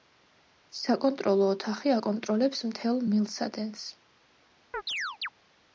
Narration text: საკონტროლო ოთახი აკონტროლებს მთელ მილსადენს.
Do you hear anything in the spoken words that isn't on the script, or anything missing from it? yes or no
no